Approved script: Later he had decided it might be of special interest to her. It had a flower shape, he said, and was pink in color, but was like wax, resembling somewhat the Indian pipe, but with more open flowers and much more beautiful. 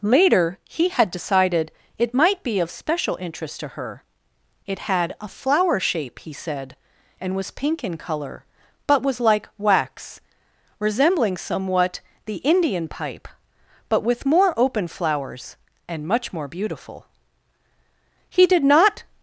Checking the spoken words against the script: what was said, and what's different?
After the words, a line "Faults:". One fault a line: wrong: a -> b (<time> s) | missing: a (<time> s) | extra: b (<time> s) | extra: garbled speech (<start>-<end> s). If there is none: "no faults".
Later he had decided it might be of special interest to her. It had a flower shape, he said, and was pink in color, but was like wax, resembling somewhat the Indian pipe, but with more open flowers and much more beautiful. He did not
Faults:
extra: He did not (18.3 s)